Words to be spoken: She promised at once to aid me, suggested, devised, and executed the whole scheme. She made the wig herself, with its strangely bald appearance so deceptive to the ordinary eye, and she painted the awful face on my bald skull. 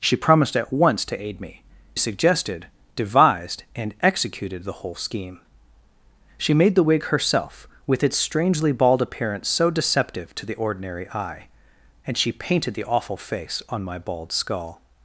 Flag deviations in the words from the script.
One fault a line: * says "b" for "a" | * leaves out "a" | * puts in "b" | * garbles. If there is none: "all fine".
all fine